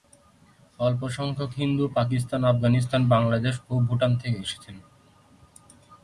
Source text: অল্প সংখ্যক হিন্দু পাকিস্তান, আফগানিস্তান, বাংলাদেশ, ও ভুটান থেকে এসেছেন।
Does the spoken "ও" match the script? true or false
true